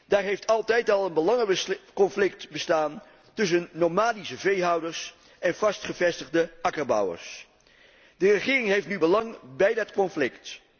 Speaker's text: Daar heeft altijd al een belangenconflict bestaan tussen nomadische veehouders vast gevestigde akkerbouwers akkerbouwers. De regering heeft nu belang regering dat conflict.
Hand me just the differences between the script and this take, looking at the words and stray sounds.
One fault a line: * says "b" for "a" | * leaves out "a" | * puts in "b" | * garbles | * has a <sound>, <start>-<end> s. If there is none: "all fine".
* puts in "en"
* leaves out "akkerbouwers"
* says "bij" for "regering"